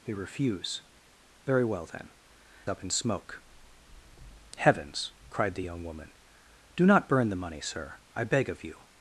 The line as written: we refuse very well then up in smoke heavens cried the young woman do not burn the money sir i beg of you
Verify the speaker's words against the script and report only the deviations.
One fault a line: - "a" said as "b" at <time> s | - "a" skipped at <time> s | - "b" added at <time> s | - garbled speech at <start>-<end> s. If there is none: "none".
none